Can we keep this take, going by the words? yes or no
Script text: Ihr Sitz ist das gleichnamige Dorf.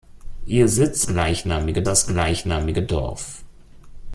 no